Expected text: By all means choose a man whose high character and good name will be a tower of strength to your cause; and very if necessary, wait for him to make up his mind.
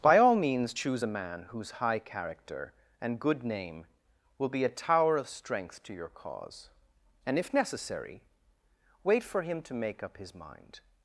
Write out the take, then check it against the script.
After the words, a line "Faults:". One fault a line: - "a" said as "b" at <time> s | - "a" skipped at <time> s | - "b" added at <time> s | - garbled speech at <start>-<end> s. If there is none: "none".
By all means choose a man whose high character and good name will be a tower of strength to your cause; and if necessary, wait for him to make up his mind.
Faults:
- "very" skipped at 7.4 s